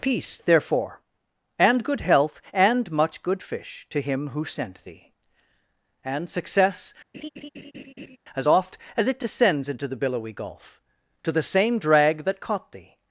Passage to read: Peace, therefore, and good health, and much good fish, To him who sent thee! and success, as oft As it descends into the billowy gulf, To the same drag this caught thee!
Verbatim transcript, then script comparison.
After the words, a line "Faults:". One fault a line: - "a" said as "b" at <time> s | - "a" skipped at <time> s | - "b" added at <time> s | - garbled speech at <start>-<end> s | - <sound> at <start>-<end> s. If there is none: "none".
Peace, therefore, and good health, and much good fish, To him who sent thee! and success, as oft As it descends into the billowy gulf, To the same drag that caught thee!
Faults:
- laugh at 7.1-8.2 s
- "this" said as "that" at 12.2 s